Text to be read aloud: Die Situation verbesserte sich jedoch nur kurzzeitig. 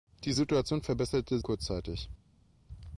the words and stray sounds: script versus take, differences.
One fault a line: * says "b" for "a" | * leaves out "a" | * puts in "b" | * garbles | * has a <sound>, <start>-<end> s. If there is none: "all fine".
* leaves out "sich jedoch nur"